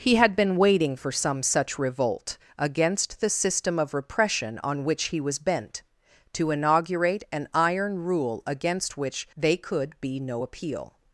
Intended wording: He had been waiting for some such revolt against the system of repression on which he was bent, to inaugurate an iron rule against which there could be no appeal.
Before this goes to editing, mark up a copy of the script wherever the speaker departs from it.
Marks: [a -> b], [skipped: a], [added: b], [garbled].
He had been waiting for some such revolt against the system of repression on which he was bent, to inaugurate an iron rule against which [there -> they] could be no appeal.